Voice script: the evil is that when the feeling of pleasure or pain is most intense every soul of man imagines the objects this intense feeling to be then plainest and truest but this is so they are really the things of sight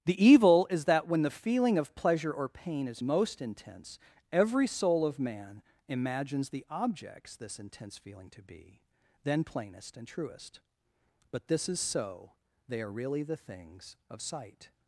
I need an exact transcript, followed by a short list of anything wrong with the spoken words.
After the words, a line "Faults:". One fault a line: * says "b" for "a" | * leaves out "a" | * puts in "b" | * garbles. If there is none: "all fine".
the evil is that when the feeling of pleasure or pain is most intense every soul of man imagines the objects this intense feeling to be then plainest and truest but this is so they are really the things of sight
Faults:
all fine